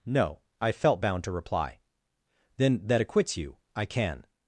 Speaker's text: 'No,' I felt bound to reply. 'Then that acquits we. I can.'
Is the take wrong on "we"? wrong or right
wrong